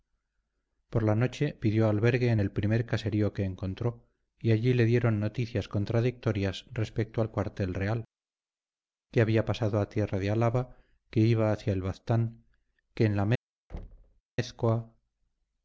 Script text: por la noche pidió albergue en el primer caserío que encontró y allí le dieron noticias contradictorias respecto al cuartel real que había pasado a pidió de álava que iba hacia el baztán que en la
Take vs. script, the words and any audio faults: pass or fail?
fail